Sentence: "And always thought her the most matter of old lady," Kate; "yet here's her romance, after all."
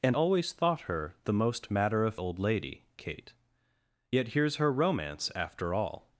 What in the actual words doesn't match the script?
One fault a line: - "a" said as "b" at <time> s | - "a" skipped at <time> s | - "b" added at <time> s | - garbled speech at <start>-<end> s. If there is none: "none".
none